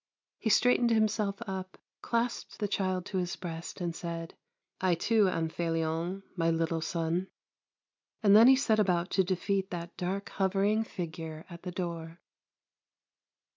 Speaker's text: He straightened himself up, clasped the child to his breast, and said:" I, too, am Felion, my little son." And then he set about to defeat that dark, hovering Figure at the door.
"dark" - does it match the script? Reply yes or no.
yes